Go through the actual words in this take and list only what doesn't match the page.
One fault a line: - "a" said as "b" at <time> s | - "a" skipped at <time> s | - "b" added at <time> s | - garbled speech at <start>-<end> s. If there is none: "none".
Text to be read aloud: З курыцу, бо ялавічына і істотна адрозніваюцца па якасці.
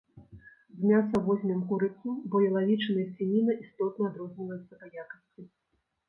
- "мяса возьмем" added at 0.9 s
- "свініна" added at 3.2 s